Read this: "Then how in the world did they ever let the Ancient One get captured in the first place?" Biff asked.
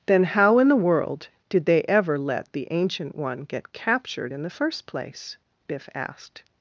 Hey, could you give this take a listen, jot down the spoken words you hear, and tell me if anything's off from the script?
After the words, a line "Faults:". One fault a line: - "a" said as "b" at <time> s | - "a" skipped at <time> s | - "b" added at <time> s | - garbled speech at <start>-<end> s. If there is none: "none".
"Then how in the world did they ever let the Ancient One get captured in the first place?" Biff asked.
Faults:
none